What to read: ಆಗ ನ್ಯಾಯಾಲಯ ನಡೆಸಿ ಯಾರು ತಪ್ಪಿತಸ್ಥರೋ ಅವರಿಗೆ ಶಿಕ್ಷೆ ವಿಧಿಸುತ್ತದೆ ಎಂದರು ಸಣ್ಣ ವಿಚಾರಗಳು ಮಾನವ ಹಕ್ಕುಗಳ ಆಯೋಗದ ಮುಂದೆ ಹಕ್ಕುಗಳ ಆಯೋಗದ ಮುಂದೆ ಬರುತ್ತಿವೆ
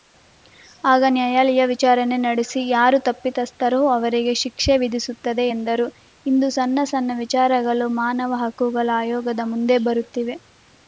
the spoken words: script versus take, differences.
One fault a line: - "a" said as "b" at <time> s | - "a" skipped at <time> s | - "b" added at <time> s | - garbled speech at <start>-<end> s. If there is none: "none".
- "ವಿಚಾರಣೆ" added at 1.7 s
- "ಇಂದು" added at 6.3 s
- "ಸಣ್ಣ" added at 6.9 s
- "ಹಕ್ಕುಗಳ ಆಯೋಗದ ಮುಂದೆ" skipped at 9.8 s